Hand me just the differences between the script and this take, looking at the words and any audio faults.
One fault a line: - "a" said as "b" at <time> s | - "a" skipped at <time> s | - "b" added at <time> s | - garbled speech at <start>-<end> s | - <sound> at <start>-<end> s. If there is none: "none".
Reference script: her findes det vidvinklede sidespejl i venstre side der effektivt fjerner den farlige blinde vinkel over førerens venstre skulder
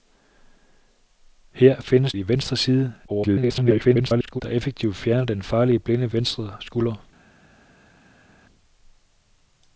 - "det vidvinklede sidespejl" skipped at 2.1 s
- garbled speech at 3.1-4.4 s
- "vinkel over førerens" skipped at 6.1 s